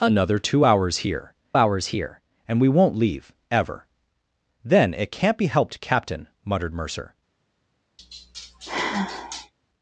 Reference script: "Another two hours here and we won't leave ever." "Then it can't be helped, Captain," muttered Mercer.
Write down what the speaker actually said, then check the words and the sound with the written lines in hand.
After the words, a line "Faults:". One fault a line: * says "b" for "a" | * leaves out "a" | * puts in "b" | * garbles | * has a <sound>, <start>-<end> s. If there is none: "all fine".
"Another two hours here hours here and we won't leave ever." "Then it can't be helped, Captain," muttered Mercer.
Faults:
* puts in "hours here"
* has a sigh, 8.0-9.5 s